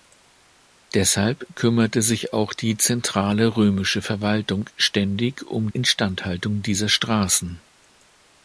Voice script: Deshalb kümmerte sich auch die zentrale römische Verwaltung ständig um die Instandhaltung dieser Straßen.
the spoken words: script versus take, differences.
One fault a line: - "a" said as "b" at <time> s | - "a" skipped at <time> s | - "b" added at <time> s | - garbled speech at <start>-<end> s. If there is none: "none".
- "die" skipped at 5.7 s